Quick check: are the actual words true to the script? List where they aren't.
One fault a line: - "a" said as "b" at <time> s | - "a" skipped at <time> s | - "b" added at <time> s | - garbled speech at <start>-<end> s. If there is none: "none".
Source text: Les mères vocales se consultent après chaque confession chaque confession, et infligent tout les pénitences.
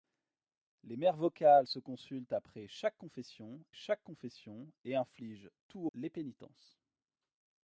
none